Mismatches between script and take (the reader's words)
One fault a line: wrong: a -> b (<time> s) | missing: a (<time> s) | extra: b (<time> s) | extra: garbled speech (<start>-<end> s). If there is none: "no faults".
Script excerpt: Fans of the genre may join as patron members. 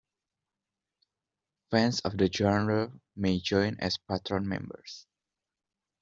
no faults